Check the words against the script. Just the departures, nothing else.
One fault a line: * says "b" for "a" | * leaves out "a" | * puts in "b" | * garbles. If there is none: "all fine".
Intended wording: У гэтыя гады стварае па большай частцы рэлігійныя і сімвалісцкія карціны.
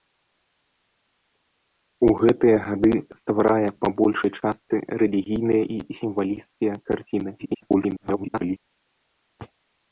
* garbles